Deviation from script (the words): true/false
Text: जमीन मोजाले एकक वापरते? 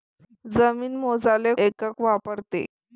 false